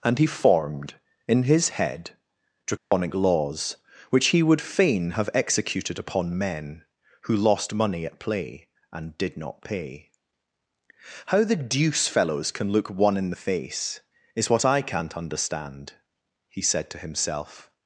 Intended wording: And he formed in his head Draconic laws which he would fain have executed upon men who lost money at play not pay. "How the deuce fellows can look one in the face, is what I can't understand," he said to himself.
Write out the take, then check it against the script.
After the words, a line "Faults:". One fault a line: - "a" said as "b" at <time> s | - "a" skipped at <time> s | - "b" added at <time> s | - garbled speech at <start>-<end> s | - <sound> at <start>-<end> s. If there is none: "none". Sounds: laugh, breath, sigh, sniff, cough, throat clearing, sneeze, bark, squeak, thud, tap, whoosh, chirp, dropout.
And he formed in his head Draconic laws which he would fain have executed upon men who lost money at play and did not pay. "How the deuce fellows can look one in the face, is what I can't understand," he said to himself.
Faults:
- dropout at 2.8-2.9 s
- "and did" added at 8.9 s